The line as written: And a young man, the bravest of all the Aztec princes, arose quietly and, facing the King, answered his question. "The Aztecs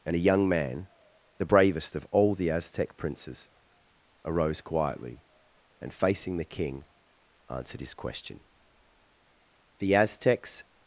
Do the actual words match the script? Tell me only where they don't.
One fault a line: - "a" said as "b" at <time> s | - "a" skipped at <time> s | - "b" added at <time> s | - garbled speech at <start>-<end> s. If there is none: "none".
none